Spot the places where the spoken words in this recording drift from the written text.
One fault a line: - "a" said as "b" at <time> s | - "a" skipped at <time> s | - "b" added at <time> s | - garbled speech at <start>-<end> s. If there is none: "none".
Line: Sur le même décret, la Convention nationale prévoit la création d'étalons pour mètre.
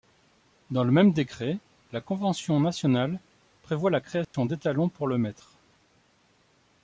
- "Sur" said as "Dans" at 0.7 s
- "le" added at 5.1 s